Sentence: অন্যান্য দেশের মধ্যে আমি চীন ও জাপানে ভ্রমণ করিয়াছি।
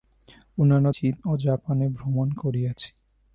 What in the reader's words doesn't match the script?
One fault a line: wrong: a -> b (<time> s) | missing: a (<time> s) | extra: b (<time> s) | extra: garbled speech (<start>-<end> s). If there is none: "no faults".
missing: দেশের মধ্যে আমি (0.9 s)